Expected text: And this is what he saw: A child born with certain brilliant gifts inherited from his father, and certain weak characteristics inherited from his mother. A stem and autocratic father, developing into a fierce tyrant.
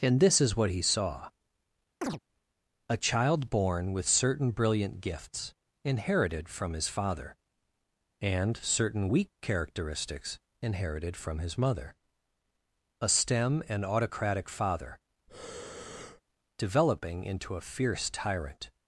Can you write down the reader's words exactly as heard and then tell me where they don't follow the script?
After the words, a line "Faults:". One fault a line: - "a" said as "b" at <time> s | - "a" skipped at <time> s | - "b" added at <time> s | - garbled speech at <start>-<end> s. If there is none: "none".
And this is what he saw: A child born with certain brilliant gifts inherited from his father, and certain weak characteristics inherited from his mother. A stem and autocratic father, developing into a fierce tyrant.
Faults:
none